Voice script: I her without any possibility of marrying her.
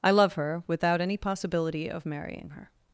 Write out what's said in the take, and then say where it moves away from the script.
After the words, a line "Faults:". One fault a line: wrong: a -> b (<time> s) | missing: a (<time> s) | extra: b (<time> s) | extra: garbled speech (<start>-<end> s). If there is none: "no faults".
I love her without any possibility of marrying her.
Faults:
extra: love (0.1 s)